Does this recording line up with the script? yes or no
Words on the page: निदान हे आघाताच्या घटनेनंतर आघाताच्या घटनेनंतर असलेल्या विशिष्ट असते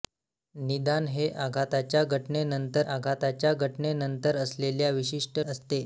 yes